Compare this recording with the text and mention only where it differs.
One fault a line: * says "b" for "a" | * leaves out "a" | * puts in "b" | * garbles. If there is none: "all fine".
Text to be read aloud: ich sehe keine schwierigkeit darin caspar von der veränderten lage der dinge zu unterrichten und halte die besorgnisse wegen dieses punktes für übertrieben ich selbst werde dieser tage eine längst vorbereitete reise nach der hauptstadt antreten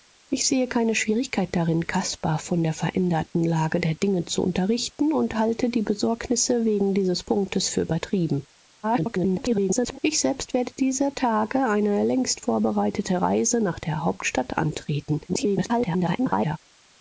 * garbles
* garbles